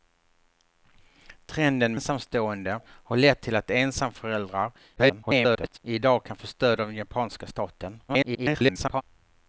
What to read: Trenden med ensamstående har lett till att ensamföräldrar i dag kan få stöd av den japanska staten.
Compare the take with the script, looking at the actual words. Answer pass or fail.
fail